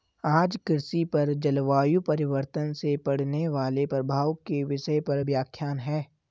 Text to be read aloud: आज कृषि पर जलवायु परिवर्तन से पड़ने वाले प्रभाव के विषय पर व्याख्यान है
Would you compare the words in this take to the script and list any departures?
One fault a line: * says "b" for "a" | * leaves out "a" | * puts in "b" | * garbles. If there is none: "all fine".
all fine